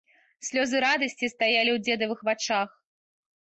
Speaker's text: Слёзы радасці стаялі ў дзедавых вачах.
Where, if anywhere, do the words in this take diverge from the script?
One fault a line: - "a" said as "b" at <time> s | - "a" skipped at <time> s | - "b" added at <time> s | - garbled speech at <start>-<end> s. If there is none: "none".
none